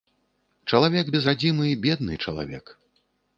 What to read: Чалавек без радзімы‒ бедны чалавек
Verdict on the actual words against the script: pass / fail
pass